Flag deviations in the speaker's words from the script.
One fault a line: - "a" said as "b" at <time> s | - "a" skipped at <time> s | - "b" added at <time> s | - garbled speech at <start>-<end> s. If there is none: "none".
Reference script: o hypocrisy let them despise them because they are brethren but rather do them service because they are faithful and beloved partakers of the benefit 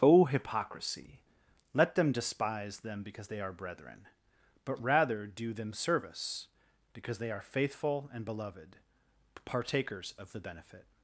none